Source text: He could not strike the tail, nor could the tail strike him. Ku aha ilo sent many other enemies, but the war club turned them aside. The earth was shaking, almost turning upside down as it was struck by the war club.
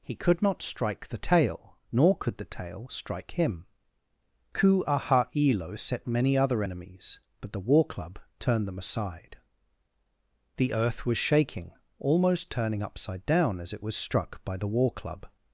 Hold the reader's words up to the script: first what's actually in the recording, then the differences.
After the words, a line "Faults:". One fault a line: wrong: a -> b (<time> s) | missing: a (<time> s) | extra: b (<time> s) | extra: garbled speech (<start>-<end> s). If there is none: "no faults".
He could not strike the tail, nor could the tail strike him. Ku aha ilo set many other enemies, but the war club turned them aside. The earth was shaking, almost turning upside down as it was struck by the war club.
Faults:
wrong: sent -> set (5.8 s)